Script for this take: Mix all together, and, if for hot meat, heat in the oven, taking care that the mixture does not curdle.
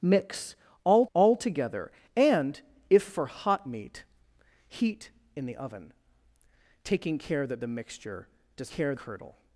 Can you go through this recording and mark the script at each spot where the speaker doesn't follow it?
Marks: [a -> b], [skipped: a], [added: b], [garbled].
Mix all [added: all] together, and, if for hot meat, heat in the oven, taking care that the mixture does [not -> care] curdle.